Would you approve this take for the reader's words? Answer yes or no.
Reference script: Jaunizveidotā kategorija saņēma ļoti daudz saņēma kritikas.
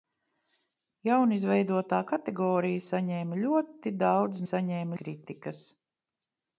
yes